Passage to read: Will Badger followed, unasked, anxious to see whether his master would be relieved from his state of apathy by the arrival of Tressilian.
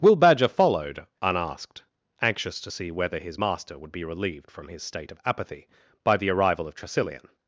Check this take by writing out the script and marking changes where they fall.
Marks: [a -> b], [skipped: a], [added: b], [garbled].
Will Badger followed, unasked, anxious to see whether his master would be relieved from his state of apathy by the arrival of Tressilian.